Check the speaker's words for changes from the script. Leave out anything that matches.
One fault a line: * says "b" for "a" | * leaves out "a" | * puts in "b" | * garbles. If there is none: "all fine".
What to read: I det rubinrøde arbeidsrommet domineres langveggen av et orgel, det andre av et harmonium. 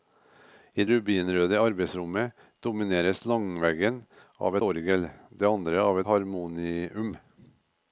* leaves out "det"
* leaves out "et"
* leaves out "et"